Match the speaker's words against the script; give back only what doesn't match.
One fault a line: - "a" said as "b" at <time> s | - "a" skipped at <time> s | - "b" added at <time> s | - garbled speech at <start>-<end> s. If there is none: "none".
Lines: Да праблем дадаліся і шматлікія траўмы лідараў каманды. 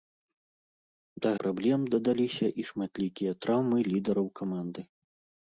none